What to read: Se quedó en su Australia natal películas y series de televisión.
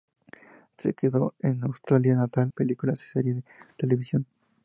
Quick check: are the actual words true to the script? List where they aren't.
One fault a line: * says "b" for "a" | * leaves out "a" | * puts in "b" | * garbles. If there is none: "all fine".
all fine